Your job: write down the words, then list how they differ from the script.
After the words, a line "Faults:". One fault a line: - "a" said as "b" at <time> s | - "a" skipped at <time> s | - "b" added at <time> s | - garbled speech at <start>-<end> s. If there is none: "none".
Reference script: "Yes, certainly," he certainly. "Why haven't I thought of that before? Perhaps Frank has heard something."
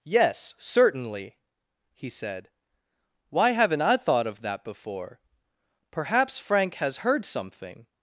"Yes, certainly," he said. "Why haven't I thought of that before? Perhaps Frank has heard something."
Faults:
- "certainly" said as "said" at 2.1 s